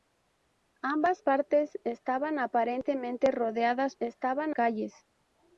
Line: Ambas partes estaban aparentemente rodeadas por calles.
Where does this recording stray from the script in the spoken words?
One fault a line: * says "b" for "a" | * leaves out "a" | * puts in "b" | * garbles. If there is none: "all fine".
* says "estaban" for "por"